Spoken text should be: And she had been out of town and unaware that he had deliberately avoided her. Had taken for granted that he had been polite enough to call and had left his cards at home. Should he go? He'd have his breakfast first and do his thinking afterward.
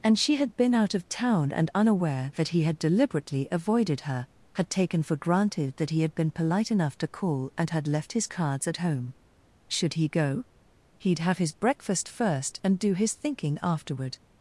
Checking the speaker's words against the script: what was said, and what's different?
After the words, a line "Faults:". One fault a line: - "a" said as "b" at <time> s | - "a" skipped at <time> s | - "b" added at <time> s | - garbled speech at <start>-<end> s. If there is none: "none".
And she had been out of town and unaware that he had deliberately avoided her. Had taken for granted that he had been polite enough to call and had left his cards at home. Should he go? He'd have his breakfast first and do his thinking afterward.
Faults:
none